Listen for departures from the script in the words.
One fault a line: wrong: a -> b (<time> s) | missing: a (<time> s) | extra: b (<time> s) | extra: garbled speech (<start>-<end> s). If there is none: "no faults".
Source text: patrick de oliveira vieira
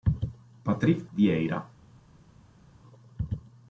missing: de oliveira (1.1 s)